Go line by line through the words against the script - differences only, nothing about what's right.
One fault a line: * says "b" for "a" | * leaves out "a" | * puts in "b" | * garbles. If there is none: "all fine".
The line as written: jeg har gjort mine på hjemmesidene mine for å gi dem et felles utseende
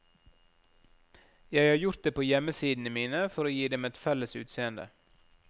* says "det" for "mine"